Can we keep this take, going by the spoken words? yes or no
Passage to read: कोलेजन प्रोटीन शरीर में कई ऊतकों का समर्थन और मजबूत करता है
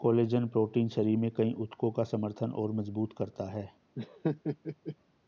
yes